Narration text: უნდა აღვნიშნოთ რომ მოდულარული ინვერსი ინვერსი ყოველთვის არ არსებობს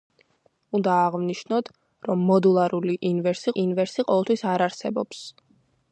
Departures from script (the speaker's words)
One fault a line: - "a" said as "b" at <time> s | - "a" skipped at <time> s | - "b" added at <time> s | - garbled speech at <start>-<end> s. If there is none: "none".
none